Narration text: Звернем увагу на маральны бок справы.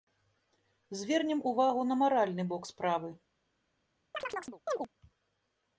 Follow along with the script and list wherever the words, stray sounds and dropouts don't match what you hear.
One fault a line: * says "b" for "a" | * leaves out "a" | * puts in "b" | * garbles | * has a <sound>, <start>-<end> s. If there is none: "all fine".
* has a chirp, 4.1-4.9 s